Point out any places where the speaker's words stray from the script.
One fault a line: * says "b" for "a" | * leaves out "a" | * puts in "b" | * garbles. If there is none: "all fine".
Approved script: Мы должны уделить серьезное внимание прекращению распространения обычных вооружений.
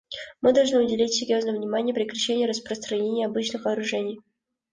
all fine